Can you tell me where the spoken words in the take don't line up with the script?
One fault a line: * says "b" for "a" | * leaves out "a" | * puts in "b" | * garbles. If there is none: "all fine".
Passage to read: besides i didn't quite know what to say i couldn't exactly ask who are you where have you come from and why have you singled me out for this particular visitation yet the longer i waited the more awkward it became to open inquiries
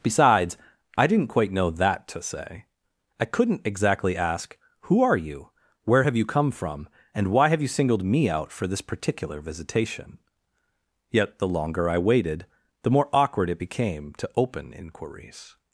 * says "that" for "what"